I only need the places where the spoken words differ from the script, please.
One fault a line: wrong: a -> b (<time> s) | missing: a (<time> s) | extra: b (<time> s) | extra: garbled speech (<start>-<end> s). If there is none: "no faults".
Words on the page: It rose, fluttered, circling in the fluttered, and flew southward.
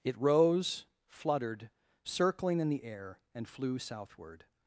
wrong: fluttered -> air (2.8 s)